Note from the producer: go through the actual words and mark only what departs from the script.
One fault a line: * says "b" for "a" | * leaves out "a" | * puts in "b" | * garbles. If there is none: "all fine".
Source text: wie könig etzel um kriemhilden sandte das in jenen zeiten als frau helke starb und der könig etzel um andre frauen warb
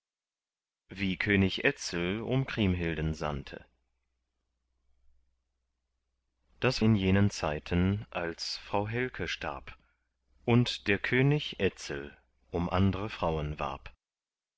all fine